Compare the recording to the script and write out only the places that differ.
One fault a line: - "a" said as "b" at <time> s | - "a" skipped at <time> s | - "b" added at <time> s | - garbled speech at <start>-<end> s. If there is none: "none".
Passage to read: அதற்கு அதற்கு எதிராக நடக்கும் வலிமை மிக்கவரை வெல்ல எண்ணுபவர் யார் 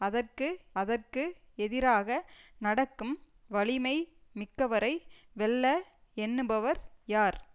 none